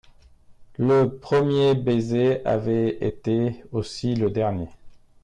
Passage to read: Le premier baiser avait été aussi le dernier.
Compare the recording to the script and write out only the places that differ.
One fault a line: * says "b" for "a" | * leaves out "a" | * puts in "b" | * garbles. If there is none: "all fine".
all fine